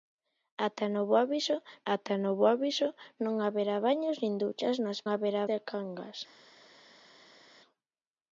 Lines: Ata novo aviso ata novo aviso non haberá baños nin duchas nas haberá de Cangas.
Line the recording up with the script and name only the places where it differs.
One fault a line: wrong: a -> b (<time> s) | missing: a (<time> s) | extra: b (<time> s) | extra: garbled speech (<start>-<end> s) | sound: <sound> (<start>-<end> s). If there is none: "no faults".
no faults